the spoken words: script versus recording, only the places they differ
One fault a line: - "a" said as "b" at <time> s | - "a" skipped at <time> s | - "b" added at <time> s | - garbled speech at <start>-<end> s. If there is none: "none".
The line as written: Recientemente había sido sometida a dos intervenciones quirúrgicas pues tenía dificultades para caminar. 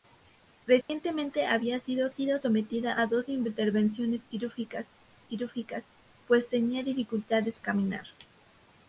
- "sido" added at 2.1 s
- "quirúrgicas" added at 5.2 s
- "para" skipped at 7.6 s